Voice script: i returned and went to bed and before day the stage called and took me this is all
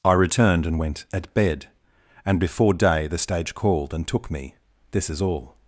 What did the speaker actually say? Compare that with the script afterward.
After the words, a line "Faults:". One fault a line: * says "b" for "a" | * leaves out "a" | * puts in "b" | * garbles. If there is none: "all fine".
i returned and went at bed and before day the stage called and took me this is all
Faults:
* says "at" for "to"